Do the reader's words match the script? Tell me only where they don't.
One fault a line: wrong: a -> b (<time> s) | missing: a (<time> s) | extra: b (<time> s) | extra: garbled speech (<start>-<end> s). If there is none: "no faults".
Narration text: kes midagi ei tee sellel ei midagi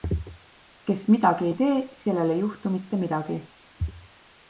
extra: juhtu mitte (2.4 s)